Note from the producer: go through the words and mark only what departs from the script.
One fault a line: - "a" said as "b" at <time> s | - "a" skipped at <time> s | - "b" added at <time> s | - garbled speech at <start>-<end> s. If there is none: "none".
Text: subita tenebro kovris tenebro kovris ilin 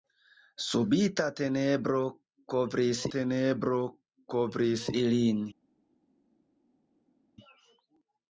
none